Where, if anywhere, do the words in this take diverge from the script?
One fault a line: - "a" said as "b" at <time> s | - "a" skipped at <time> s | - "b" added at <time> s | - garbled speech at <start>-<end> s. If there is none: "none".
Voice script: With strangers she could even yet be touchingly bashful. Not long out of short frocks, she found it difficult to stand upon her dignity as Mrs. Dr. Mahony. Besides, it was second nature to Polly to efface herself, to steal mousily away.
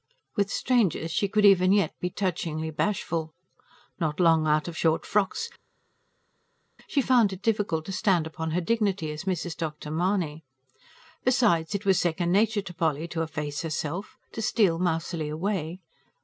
none